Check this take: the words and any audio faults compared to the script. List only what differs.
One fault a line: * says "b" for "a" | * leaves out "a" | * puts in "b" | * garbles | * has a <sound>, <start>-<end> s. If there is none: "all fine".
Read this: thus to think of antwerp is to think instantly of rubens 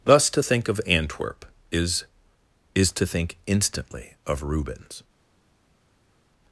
* puts in "is"